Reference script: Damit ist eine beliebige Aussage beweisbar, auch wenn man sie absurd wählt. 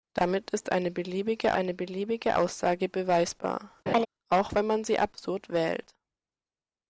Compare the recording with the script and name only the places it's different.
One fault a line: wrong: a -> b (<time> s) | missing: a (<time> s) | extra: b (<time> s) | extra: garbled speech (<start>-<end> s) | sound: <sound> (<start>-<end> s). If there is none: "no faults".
extra: eine beliebige (1.5 s)
sound: laugh (3.9-4.1 s)